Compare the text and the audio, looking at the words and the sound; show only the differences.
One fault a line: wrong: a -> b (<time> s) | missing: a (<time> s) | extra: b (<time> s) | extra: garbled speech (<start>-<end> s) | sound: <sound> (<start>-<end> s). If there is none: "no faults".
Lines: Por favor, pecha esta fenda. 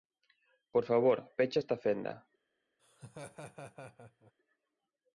sound: laugh (2.8-4.3 s)